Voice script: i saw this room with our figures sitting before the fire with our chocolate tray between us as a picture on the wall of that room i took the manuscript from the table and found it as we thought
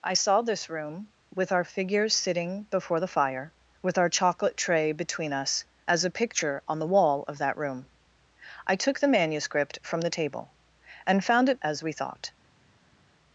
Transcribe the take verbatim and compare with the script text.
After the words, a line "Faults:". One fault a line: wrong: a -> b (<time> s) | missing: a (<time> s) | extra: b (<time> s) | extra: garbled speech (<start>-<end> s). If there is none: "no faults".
i saw this room with our figures sitting before the fire with our chocolate tray between us as a picture on the wall of that room i took the manuscript from the table and found it as we thought
Faults:
no faults